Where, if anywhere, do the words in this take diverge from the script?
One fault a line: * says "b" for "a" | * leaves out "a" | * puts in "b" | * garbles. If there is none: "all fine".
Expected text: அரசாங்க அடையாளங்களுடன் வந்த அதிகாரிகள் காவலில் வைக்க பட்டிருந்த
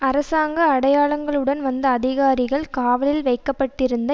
all fine